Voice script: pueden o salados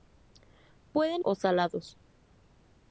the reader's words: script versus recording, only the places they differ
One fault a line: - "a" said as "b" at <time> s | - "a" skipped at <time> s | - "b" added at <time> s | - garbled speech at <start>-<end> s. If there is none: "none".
none